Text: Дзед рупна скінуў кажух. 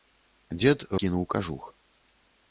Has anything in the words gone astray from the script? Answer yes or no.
yes